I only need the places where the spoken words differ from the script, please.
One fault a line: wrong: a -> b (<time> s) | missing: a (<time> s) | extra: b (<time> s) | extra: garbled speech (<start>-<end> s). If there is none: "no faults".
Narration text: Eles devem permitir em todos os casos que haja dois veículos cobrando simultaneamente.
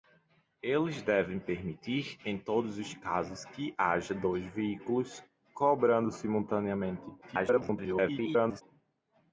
extra: garbled speech (7.2-8.6 s)